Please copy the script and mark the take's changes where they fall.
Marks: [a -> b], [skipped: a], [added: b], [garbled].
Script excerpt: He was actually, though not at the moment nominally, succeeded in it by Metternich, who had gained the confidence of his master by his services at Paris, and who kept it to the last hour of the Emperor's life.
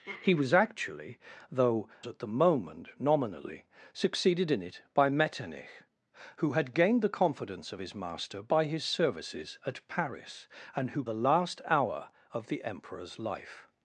He was actually, though [skipped: not] at the moment nominally, succeeded in it by Metternich, who had gained the confidence of his master by his services at Paris, and who [skipped: kept it to] the last hour of the Emperor's life.